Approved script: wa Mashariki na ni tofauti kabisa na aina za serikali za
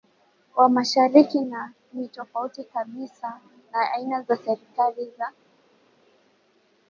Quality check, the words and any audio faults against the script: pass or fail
pass